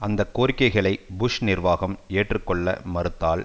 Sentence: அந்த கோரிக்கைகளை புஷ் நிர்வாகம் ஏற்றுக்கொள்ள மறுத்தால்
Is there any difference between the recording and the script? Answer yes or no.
no